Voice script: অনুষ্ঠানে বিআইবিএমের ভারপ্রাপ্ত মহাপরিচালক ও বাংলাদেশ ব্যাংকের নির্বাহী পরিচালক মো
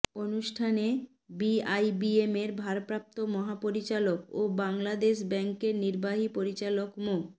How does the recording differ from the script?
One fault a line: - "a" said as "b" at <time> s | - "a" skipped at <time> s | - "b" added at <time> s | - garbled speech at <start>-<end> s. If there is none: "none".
none